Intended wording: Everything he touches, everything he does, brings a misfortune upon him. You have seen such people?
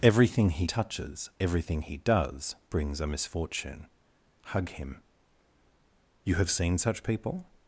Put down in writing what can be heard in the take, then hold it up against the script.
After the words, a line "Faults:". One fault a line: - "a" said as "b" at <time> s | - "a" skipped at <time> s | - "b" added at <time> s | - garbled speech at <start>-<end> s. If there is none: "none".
Everything he touches, everything he does, brings a misfortune hug him. You have seen such people?
Faults:
- "upon" said as "hug" at 4.5 s